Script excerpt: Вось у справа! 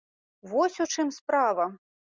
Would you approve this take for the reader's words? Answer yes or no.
no